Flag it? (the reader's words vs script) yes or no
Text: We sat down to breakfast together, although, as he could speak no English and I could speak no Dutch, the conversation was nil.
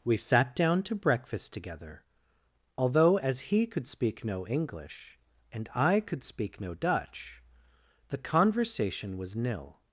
no